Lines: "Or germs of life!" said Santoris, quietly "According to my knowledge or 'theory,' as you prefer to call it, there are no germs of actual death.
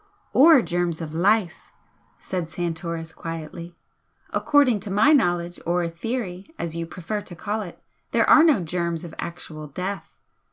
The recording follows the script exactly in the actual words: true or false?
true